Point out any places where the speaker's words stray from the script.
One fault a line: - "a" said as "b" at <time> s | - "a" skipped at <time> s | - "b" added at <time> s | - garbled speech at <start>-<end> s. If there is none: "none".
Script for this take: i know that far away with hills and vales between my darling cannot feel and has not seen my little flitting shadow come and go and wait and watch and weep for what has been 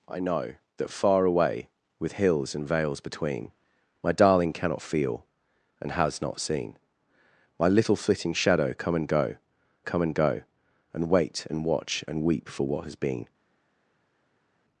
- "come and go" added at 9.8 s